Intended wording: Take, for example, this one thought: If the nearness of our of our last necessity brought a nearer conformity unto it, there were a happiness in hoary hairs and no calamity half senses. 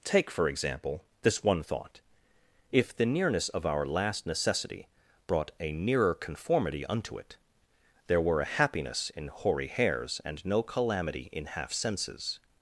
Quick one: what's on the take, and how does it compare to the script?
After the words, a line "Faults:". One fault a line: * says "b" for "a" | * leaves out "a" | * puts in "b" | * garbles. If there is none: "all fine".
Take, for example, this one thought: If the nearness of our last necessity brought a nearer conformity unto it, there were a happiness in hoary hairs and no calamity in half senses.
Faults:
* leaves out "of our"
* puts in "in"